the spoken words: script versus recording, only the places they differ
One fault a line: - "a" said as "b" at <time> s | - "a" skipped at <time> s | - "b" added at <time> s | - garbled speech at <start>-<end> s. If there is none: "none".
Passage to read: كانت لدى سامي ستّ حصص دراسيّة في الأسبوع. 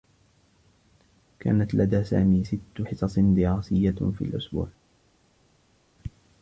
none